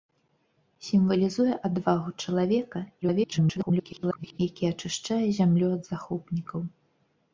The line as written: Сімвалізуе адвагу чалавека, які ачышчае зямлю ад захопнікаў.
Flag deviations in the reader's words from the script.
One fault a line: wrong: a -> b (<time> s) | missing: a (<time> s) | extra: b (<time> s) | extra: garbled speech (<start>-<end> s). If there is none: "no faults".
extra: garbled speech (3.0-4.4 s)